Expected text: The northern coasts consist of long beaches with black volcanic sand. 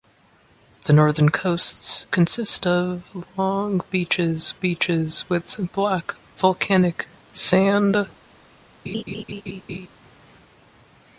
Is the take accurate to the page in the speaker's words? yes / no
no